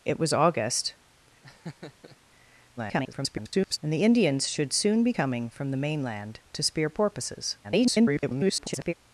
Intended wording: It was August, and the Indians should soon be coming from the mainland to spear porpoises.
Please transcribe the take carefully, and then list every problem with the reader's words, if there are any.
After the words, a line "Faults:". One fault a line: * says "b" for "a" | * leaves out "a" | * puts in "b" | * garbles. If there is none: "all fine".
It was August, [garbled] and the Indians should soon be coming from the mainland to spear porpoises. [garbled]
Faults:
* garbles
* garbles